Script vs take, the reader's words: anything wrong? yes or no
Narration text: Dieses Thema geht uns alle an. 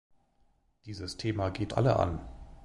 yes